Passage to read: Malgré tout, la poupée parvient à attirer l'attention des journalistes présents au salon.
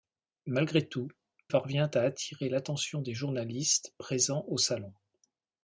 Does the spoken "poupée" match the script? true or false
false